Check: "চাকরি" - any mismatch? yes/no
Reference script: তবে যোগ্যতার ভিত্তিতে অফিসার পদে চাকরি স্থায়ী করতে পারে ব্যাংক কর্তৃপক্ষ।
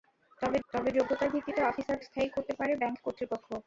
yes